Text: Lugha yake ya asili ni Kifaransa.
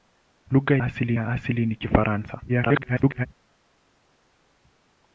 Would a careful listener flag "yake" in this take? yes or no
yes